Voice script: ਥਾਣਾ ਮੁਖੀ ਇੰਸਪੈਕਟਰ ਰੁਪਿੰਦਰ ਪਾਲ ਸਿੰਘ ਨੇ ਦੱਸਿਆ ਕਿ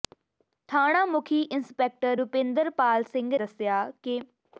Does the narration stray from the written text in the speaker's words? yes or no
yes